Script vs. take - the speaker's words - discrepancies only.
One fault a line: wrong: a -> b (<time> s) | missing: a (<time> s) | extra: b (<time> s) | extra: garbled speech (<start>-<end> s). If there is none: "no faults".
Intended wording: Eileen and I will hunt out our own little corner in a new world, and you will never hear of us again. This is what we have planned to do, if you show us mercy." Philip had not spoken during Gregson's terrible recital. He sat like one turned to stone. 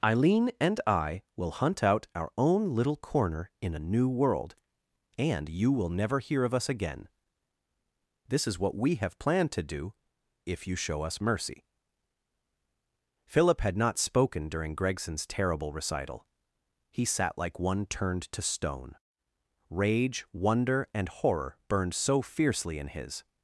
extra: Rage wonder and horror burned so fiercely in his (19.7 s)